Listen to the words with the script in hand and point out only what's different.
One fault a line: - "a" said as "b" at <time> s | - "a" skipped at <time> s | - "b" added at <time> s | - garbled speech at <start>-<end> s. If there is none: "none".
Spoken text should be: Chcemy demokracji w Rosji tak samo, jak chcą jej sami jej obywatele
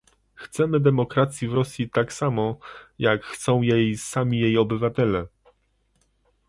none